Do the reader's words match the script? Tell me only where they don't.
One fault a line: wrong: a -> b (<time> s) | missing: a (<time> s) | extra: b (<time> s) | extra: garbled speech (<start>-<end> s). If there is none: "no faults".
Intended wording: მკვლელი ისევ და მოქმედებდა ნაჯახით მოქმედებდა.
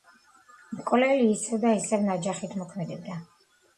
wrong: მოქმედებდა -> ისევ (1.8 s)